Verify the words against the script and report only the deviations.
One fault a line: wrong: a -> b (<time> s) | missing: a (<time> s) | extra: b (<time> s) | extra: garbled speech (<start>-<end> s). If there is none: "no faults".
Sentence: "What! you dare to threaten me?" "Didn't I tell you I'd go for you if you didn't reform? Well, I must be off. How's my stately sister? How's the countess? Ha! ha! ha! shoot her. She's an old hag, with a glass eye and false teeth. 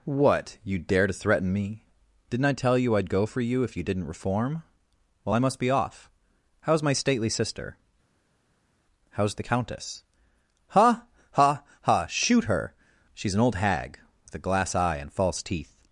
no faults